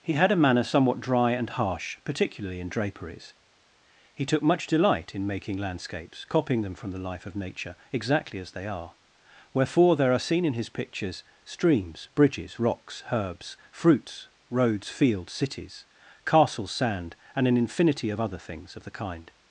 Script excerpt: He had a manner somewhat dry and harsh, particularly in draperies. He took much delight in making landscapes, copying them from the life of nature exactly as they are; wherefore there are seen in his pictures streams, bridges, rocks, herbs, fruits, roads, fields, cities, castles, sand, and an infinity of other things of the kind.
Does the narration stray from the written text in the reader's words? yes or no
no